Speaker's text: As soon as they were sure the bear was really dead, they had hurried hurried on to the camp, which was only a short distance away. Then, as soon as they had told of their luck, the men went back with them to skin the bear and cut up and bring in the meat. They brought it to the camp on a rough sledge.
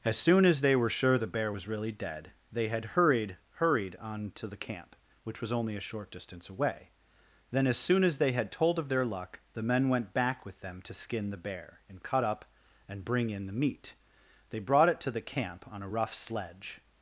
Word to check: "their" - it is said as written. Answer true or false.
true